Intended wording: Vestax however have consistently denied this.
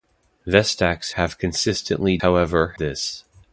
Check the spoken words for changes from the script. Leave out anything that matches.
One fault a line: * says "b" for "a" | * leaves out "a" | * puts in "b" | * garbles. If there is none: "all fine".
* leaves out "however"
* says "however" for "denied"